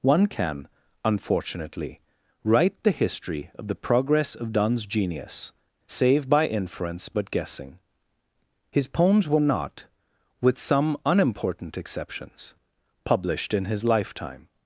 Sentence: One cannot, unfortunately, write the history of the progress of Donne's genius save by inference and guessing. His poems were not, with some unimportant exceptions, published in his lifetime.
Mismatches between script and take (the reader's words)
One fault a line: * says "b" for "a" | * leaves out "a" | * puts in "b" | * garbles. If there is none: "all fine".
* says "can" for "cannot"
* says "but" for "and"